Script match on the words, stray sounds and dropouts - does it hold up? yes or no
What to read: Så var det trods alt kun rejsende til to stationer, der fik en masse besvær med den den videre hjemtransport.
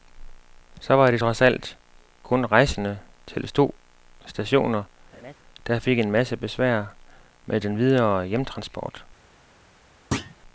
no